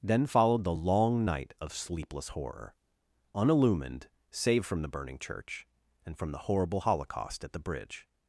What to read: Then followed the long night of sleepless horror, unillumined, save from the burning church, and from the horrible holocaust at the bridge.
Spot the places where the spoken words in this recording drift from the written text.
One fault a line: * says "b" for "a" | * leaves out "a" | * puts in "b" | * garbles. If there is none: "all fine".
all fine